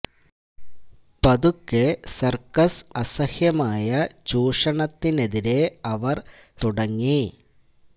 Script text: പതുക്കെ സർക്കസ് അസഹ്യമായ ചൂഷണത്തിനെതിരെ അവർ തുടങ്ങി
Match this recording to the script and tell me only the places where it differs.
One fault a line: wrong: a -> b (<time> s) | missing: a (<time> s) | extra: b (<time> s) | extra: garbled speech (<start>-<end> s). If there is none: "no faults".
no faults